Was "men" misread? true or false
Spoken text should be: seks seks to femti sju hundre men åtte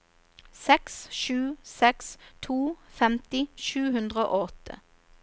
true